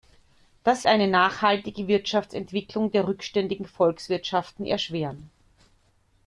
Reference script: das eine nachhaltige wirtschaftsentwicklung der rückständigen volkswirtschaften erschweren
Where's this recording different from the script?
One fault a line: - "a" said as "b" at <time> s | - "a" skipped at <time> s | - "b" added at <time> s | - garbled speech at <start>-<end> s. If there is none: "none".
none